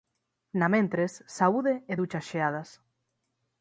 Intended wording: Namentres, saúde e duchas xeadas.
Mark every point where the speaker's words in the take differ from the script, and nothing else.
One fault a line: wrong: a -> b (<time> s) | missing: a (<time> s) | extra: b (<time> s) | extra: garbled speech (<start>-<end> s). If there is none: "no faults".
no faults